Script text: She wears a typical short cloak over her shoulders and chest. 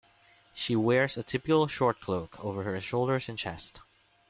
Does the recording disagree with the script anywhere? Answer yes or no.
no